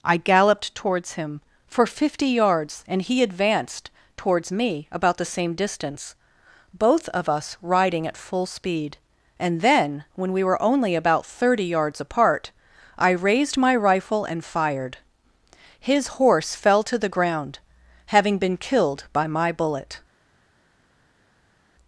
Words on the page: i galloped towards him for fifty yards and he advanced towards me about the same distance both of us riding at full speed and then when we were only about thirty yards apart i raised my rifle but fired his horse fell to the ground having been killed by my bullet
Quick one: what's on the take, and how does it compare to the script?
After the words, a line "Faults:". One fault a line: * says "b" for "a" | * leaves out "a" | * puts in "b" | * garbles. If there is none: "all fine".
i galloped towards him for fifty yards and he advanced towards me about the same distance both of us riding at full speed and then when we were only about thirty yards apart i raised my rifle and fired his horse fell to the ground having been killed by my bullet
Faults:
* says "and" for "but"